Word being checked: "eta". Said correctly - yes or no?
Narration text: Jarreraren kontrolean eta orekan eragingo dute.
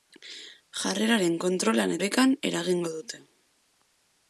no